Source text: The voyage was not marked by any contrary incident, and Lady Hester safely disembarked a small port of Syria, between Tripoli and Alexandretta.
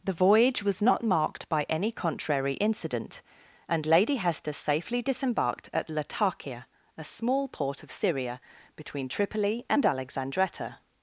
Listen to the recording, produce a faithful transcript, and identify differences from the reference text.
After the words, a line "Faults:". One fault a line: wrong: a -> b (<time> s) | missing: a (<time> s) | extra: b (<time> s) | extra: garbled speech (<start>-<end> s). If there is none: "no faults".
The voyage was not marked by any contrary incident, and Lady Hester safely disembarked at Latakia, a small port of Syria, between Tripoli and Alexandretta.
Faults:
extra: at Latakia (5.7 s)